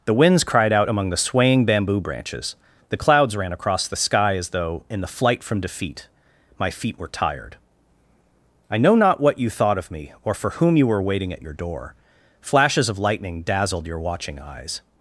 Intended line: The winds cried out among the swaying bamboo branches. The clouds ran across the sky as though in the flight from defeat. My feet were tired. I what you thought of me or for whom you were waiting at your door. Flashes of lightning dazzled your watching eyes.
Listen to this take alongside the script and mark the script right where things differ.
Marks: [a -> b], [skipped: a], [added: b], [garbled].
The winds cried out among the swaying bamboo branches. The clouds ran across the sky as though in the flight from defeat. My feet were tired. I [added: know not] what you thought of me or for whom you were waiting at your door. Flashes of lightning dazzled your watching eyes.